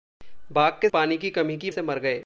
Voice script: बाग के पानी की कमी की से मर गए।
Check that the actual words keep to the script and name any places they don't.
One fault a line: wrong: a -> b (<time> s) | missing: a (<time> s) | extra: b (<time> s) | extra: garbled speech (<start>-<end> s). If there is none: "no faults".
no faults